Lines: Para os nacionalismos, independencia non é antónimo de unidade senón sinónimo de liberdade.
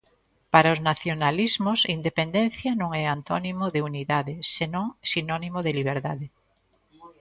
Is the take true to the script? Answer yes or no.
yes